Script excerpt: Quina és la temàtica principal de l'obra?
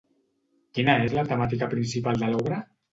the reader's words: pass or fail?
pass